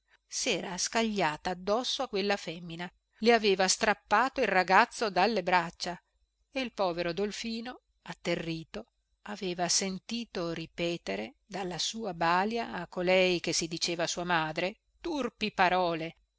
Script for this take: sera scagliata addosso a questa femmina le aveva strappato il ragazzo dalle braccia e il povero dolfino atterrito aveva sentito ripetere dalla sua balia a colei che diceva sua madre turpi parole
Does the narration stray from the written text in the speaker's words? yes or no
yes